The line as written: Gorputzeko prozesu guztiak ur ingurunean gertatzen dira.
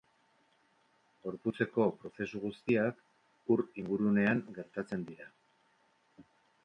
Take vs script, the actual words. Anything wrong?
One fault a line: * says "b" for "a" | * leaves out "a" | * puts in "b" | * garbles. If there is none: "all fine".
all fine